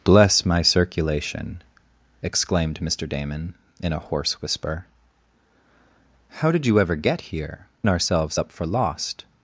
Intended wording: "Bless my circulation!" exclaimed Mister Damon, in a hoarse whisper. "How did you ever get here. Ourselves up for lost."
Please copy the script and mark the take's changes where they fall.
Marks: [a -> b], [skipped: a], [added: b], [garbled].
"Bless my circulation!" exclaimed Mister Damon, in a hoarse whisper. "How did you ever get here. Ourselves up for lost."